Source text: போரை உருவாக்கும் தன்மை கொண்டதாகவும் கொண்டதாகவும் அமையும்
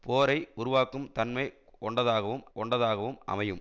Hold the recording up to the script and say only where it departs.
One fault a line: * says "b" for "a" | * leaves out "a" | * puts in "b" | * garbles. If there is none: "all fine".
all fine